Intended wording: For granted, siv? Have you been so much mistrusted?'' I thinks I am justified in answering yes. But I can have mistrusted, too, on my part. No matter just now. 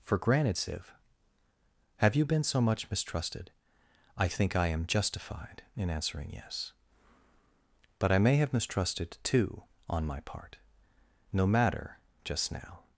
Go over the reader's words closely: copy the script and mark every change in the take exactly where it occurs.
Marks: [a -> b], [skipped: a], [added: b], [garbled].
For granted, siv? Have you been so much mistrusted?'' I [thinks -> think] I am justified in answering yes. But I [can -> may] have mistrusted, too, on my part. No matter just now.